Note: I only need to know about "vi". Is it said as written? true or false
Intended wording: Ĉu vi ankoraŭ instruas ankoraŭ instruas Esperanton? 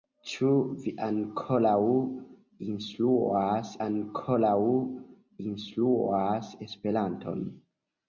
true